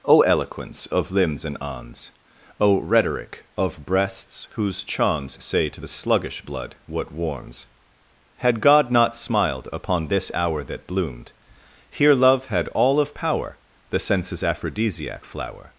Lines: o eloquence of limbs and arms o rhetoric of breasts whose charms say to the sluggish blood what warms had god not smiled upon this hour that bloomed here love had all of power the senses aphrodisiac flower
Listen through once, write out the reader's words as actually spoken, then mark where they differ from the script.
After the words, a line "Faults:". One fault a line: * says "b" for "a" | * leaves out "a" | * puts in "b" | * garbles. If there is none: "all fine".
o eloquence of limbs and arms o rhetoric of breasts whose charms say to the sluggish blood what warms had god not smiled upon this hour that bloomed here love had all of power the senses aphrodisiac flower
Faults:
all fine